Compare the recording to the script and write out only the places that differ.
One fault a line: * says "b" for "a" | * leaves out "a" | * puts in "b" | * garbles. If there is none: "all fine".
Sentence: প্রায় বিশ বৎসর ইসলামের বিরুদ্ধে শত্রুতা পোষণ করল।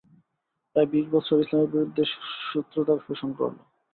all fine